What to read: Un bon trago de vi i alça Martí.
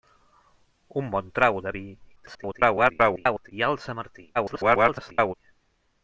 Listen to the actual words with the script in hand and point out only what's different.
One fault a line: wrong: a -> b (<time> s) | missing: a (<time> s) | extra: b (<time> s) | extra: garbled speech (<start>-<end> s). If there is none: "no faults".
extra: garbled speech (2.2-3.5 s)
extra: garbled speech (4.3-5.3 s)